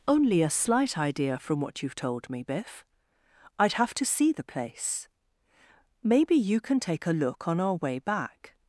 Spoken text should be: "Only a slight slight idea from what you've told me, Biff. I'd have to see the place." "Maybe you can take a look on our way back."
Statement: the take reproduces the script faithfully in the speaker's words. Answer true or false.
false